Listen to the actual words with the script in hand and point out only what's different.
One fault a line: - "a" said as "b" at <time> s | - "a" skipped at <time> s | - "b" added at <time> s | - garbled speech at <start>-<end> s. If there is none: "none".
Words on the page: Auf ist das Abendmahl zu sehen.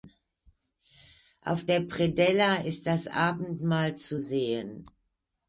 - "der Predella" added at 1.6 s